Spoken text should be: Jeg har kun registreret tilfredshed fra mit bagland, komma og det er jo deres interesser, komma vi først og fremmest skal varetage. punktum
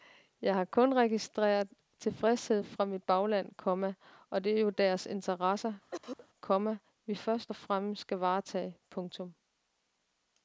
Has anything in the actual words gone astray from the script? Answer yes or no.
no